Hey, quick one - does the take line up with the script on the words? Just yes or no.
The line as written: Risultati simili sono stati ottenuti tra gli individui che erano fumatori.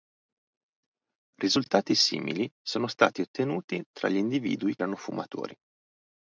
no